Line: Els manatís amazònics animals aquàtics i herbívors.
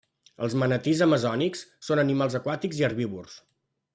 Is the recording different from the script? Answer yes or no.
yes